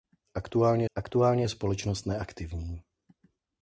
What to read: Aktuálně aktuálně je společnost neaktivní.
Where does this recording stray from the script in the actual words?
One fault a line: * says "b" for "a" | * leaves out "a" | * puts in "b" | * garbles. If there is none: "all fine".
all fine